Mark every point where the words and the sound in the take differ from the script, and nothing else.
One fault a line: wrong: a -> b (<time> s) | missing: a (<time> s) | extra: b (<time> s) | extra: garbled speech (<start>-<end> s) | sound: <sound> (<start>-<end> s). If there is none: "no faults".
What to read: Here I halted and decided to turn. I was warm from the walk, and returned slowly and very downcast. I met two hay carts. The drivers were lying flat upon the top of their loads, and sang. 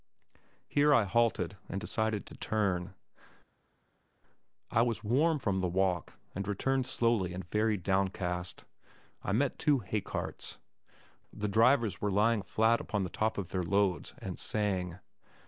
no faults